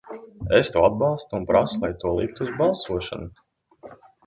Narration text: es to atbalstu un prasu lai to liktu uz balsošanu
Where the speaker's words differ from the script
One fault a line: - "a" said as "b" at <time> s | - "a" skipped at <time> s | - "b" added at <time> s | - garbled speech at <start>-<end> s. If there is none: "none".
none